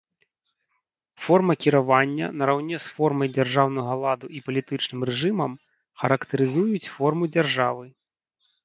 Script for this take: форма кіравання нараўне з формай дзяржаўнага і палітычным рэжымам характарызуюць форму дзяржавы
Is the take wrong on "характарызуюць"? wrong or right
right